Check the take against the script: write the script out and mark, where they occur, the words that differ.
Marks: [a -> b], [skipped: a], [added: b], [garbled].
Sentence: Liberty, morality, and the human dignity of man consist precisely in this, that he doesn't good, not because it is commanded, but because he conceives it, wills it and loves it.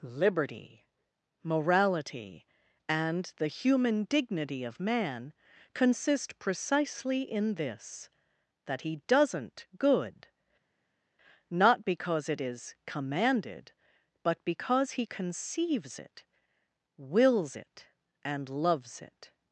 Liberty, morality, and the human dignity of man consist precisely in this, that he doesn't good, not because it is commanded, but because he conceives it, wills it and loves it.